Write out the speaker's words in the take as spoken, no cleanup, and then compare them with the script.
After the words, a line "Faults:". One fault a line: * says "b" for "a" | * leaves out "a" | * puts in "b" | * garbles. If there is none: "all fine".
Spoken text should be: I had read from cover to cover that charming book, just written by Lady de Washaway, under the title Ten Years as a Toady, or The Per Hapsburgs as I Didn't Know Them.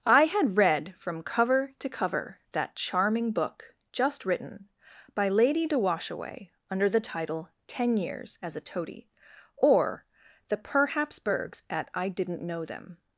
I had read from cover to cover that charming book, just written by Lady de Washaway, under the title Ten Years as a Toady, or The Per Hapsburgs at I Didn't Know Them.
Faults:
* says "at" for "as"